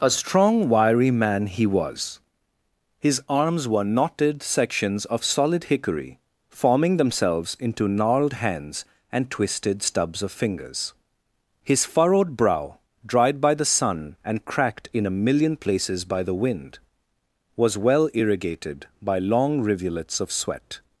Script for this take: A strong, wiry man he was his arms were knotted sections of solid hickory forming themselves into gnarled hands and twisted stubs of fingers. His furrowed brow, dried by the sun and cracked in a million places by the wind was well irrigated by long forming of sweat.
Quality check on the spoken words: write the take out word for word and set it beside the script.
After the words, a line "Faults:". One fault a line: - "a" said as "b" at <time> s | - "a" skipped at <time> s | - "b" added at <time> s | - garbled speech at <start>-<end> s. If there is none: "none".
A strong, wiry man he was his arms were knotted sections of solid hickory forming themselves into gnarled hands and twisted stubs of fingers. His furrowed brow, dried by the sun and cracked in a million places by the wind was well irrigated by long rivulets of sweat.
Faults:
- "forming" said as "rivulets" at 19.6 s